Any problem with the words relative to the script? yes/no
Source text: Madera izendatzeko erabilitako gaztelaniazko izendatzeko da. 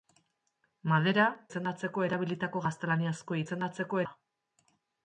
no